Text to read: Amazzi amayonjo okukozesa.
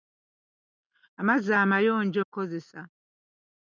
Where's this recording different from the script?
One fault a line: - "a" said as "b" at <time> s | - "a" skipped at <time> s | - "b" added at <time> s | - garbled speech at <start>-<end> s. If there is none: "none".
none